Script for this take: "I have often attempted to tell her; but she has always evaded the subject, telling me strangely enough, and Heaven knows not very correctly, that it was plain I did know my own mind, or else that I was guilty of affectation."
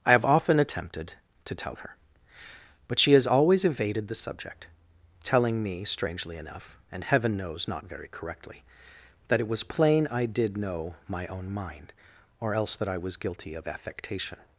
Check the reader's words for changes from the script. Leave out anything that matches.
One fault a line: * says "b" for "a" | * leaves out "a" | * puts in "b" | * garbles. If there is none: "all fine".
all fine